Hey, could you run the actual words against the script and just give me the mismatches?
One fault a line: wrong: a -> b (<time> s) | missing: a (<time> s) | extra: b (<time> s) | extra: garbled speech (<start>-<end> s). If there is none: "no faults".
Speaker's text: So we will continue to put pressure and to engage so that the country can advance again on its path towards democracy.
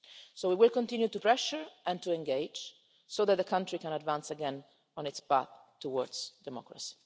missing: put (1.2 s)